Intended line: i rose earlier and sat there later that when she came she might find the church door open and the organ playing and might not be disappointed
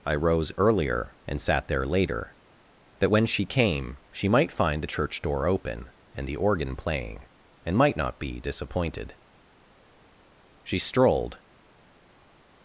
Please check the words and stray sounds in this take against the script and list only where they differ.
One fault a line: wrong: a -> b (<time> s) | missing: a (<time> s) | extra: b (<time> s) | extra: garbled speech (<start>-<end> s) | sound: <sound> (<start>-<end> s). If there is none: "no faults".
extra: she strolled (10.6 s)